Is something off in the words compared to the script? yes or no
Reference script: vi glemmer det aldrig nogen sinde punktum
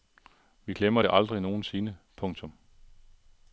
no